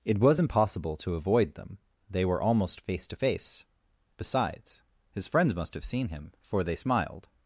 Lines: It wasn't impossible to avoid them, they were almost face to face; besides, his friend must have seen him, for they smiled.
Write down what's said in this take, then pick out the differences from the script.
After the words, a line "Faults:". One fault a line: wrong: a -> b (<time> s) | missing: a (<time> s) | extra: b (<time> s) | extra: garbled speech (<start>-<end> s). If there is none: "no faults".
It was impossible to avoid them, they were almost face to face; besides, his friends must have seen him, for they smiled.
Faults:
wrong: wasn't -> was (0.2 s)
wrong: friend -> friends (5.3 s)